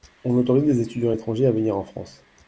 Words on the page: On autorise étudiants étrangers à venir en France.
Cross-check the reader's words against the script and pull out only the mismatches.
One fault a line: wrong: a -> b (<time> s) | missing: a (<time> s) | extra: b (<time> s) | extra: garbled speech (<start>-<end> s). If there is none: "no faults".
extra: les (0.6 s)